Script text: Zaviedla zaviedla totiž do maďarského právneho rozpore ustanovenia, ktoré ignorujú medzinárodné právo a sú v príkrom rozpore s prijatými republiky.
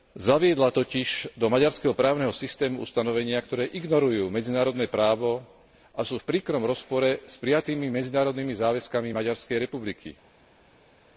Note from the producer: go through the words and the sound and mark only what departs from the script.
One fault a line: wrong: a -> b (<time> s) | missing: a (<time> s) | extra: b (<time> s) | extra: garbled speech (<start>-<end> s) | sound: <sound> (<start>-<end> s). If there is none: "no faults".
missing: zaviedla (0.8 s)
wrong: rozpore -> systému (2.4 s)
extra: medzinárodnými záväzkami Maďarskej (7.9 s)